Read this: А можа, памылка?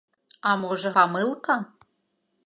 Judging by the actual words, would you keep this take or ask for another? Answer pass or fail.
pass